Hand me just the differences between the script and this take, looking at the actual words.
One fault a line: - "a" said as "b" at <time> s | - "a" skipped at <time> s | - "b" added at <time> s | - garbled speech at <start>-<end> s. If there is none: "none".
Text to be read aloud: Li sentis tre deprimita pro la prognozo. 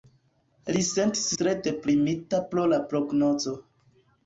none